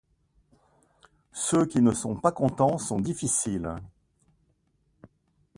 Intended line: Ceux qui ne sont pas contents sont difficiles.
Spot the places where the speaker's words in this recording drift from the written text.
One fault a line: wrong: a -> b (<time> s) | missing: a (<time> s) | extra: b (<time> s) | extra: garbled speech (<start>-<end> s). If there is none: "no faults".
no faults